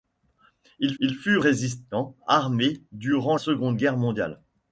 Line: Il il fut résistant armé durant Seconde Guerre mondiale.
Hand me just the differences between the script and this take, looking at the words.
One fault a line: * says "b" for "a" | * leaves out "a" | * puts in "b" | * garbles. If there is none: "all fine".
all fine